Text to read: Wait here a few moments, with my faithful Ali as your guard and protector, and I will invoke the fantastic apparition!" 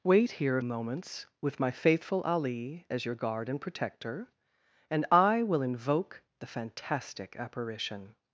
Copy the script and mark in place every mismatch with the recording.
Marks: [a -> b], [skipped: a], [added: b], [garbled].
Wait here a [skipped: few] moments, with my faithful Ali as your guard and protector, and I will invoke the fantastic apparition!"